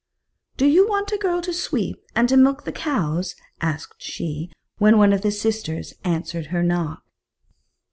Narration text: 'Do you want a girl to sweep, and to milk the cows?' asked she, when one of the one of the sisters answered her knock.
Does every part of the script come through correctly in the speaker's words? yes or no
no